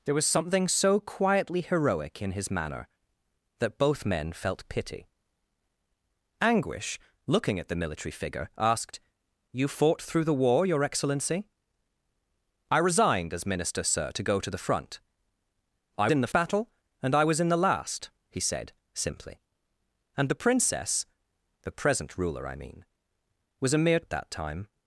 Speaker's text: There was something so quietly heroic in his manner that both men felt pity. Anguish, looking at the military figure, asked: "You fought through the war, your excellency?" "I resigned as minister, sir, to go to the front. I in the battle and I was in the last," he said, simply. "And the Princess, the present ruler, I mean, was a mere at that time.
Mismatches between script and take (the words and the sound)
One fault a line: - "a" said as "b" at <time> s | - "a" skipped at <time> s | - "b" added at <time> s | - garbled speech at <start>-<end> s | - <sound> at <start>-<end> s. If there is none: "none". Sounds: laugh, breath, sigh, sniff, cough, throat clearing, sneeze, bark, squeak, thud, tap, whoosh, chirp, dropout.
none